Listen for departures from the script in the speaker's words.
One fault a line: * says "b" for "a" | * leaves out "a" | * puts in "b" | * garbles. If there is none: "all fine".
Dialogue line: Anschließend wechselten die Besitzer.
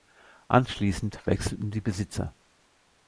all fine